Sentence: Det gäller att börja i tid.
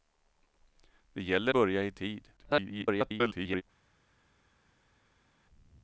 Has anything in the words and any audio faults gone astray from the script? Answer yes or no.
yes